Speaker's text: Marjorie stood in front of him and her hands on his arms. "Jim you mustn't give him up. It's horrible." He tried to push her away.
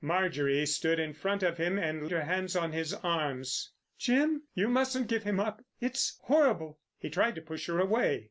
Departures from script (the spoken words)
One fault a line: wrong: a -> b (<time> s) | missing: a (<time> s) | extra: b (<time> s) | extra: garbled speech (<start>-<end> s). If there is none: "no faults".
no faults